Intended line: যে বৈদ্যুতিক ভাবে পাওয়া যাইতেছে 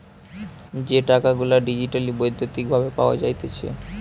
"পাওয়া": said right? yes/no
yes